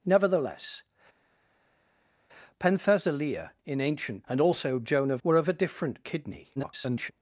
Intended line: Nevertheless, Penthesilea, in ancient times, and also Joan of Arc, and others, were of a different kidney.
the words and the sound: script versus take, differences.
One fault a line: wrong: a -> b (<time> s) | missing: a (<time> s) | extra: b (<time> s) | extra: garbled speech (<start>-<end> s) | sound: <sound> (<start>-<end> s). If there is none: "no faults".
missing: times (4.2 s)
missing: Arc and others (5.2 s)
extra: garbled speech (6.6-7.1 s)